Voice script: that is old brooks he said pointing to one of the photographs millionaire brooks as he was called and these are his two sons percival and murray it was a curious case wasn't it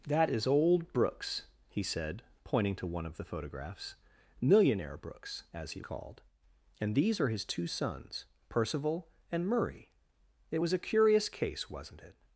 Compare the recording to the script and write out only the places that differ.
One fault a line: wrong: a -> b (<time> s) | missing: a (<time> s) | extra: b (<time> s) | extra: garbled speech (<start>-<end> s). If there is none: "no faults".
missing: was (5.8 s)